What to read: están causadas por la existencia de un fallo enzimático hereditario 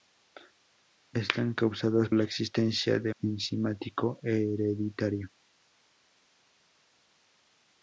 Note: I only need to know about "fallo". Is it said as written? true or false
false